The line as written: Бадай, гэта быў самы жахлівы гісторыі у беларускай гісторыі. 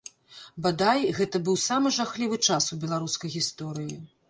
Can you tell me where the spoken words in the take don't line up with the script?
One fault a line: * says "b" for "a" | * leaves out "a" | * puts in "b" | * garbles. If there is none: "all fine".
* says "час" for "гісторыі"